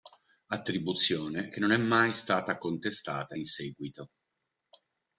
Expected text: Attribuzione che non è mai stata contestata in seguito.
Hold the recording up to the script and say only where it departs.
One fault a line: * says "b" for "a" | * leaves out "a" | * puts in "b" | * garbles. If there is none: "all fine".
all fine